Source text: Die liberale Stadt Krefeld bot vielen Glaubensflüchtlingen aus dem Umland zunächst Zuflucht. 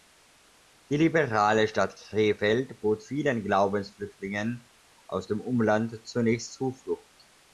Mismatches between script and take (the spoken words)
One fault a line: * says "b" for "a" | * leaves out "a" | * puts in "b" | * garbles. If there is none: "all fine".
all fine